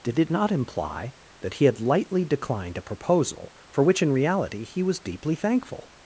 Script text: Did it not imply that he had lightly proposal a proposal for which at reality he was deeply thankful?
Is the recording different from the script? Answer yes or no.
yes